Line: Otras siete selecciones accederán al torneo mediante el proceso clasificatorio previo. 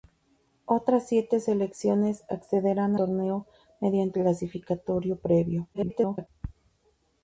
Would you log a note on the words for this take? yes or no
yes